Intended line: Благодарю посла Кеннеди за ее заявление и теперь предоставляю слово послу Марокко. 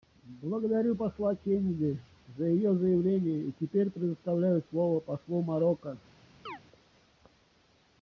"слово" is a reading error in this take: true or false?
false